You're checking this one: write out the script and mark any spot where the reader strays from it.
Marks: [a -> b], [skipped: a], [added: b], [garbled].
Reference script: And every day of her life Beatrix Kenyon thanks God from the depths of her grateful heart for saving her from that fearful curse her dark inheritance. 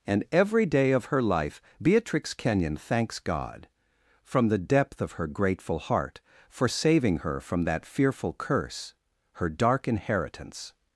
And every day of her life Beatrix Kenyon thanks God from the [depths -> depth] of her grateful heart for saving her from that fearful curse her dark inheritance.